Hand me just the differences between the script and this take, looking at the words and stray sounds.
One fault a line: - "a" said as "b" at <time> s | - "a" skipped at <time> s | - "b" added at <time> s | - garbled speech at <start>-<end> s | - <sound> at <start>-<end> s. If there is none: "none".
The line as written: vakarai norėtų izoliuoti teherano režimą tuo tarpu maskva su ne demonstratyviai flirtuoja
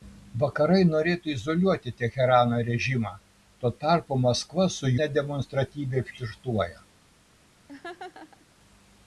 - laugh at 7.7-8.5 s